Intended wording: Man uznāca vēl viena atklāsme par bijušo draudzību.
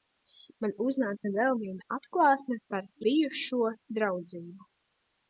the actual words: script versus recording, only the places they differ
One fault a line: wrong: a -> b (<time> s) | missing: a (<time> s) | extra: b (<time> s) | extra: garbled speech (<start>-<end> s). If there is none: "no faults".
no faults